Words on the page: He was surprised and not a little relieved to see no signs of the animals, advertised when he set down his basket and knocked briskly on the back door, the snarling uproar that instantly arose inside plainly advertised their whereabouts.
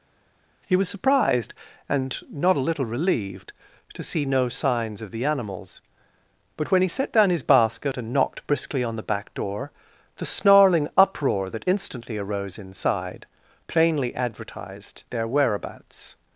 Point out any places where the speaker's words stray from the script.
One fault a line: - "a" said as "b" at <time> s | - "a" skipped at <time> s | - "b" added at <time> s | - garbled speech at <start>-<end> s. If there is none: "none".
- "advertised" said as "but" at 6.6 s